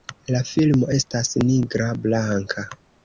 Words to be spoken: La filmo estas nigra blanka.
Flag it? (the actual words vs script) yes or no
no